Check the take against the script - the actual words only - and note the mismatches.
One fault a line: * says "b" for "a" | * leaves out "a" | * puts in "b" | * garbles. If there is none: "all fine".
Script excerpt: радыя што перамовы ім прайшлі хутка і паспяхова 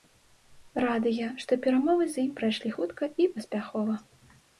* puts in "з"